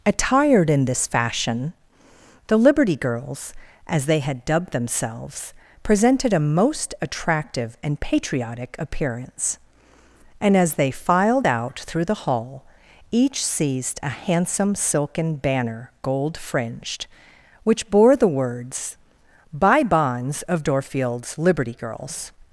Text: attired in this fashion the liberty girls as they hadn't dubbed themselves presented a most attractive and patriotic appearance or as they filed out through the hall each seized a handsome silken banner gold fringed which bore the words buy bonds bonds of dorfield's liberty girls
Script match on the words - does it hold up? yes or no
no